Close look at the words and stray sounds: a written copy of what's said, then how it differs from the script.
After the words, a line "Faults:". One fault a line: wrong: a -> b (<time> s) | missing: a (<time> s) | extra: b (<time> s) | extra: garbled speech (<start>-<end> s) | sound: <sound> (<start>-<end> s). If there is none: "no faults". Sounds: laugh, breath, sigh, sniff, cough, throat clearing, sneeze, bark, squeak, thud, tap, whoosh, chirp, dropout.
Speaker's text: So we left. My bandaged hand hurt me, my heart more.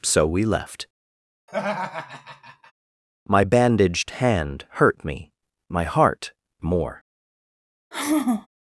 So we left. My bandaged hand hurt me, my heart more.
Faults:
sound: laugh (1.5-2.7 s)
sound: sigh (7.9-8.5 s)